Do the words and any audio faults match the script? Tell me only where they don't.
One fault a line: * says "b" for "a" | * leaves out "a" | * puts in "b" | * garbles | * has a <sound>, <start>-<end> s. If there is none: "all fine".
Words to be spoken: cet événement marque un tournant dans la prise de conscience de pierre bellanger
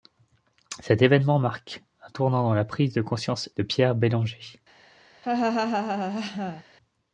* has a laugh, 5.2-6.6 s